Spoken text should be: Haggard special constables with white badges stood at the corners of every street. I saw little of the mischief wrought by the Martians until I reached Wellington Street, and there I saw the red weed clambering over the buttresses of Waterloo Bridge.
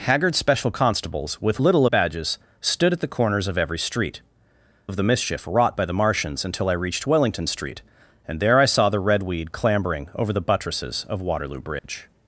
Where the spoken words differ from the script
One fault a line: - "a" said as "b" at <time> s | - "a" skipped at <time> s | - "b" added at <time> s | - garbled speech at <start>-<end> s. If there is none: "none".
- "white" said as "little" at 1.6 s
- "I saw little" skipped at 4.2 s